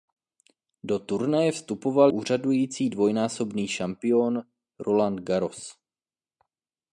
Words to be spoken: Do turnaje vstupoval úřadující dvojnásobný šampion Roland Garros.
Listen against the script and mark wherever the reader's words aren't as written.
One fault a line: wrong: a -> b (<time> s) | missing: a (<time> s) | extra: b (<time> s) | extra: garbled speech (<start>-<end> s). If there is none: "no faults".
no faults